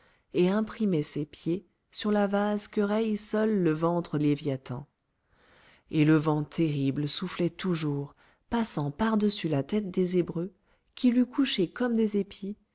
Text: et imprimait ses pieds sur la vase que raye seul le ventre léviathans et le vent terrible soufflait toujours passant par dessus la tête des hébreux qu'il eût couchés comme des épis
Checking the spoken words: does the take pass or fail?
pass